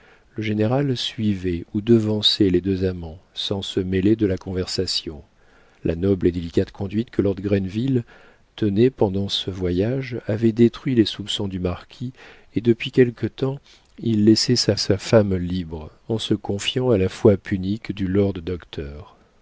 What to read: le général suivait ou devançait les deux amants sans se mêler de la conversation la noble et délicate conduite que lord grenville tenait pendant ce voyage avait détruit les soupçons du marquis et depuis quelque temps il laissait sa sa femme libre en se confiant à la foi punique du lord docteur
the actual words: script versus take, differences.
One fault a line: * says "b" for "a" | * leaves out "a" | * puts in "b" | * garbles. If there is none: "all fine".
all fine